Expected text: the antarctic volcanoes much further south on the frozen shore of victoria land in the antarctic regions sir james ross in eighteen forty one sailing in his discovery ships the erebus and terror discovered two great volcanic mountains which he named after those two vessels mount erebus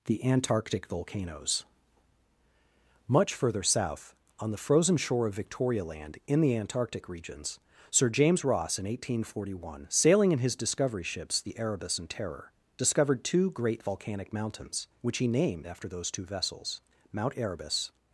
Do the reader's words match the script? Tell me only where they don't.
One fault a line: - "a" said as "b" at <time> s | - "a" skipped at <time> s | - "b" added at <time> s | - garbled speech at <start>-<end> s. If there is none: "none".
none